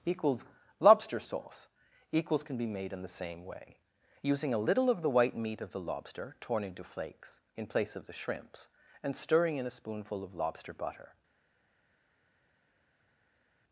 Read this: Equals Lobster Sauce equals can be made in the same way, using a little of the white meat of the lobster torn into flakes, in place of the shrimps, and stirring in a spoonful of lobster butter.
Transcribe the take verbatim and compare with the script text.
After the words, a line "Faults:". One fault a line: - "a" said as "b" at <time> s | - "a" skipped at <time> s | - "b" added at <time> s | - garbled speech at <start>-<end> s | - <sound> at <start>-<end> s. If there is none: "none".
Equals Lobster Sauce equals can be made in the same way, using a little of the white meat of the lobster torn into flakes, in place of the shrimps, and stirring in a spoonful of lobster butter.
Faults:
none